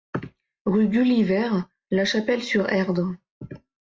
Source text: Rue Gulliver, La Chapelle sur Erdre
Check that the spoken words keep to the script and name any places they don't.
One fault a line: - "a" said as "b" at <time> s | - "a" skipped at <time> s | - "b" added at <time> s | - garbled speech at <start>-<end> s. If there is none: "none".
none